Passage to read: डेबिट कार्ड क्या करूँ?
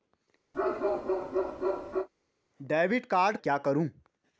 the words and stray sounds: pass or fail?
fail